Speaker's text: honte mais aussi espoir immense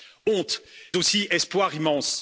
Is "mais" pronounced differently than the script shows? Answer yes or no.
yes